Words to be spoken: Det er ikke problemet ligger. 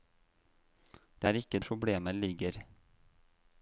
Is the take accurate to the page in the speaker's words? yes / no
yes